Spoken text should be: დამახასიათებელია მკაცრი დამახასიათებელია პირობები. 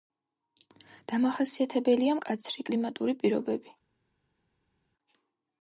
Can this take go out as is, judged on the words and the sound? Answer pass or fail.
fail